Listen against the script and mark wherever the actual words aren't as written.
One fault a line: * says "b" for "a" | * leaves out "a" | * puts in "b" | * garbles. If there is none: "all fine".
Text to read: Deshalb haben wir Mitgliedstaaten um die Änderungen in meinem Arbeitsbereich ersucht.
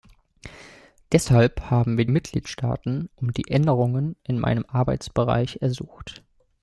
all fine